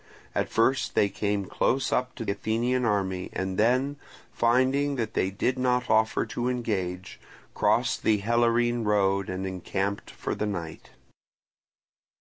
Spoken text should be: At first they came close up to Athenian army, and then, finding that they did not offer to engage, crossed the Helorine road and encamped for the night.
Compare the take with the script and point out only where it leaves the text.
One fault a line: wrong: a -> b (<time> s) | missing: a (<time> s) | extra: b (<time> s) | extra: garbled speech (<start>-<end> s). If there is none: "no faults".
no faults